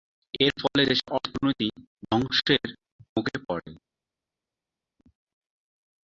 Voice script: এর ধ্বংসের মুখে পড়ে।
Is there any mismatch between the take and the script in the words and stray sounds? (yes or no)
yes